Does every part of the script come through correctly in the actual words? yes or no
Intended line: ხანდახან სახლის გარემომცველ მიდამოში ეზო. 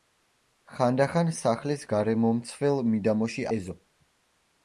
yes